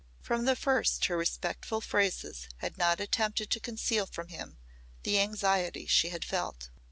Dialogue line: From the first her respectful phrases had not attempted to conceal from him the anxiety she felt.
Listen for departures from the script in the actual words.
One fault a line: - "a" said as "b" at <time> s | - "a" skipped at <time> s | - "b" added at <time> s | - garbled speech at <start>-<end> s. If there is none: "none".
- "had" added at 6.1 s